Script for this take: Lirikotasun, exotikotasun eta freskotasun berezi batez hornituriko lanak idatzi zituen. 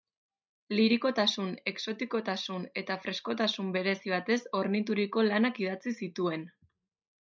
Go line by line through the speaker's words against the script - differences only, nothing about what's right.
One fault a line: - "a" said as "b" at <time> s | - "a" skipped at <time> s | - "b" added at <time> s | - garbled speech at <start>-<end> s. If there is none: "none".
none